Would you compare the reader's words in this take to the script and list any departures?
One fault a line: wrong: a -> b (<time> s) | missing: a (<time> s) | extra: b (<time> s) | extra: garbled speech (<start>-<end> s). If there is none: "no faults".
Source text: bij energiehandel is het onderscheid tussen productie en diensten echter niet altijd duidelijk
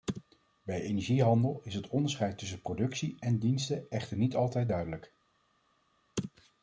no faults